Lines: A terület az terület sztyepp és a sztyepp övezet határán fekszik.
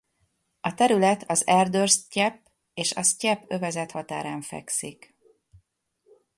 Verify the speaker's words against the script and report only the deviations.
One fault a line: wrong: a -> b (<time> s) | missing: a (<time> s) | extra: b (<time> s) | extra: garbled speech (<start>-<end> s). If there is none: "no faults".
wrong: terület -> erdős (1.5 s)